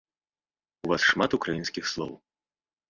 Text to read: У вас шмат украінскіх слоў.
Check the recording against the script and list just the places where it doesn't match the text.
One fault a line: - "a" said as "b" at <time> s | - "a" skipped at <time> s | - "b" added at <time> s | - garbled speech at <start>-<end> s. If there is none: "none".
none